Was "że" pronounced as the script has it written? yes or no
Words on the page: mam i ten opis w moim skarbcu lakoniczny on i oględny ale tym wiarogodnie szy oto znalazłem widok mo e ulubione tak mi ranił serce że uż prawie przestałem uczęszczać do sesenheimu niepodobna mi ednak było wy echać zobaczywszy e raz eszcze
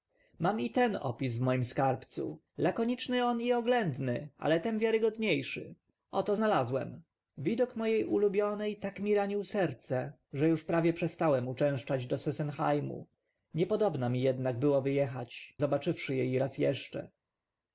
yes